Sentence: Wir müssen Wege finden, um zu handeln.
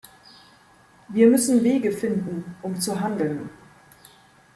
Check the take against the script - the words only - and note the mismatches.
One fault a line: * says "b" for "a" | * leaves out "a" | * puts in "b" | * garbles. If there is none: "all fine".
all fine